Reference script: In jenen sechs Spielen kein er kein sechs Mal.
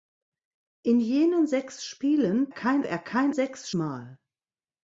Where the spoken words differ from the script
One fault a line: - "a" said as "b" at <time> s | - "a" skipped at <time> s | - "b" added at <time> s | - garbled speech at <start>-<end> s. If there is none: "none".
none